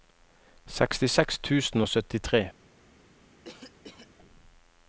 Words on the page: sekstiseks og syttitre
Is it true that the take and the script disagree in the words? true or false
true